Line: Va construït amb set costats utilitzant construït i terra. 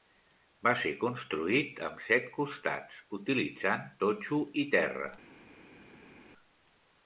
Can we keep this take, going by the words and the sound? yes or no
no